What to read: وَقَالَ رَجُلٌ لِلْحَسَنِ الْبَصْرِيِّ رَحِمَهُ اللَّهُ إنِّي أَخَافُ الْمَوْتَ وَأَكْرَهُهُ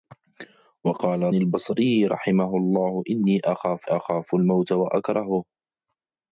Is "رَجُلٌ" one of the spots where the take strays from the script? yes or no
yes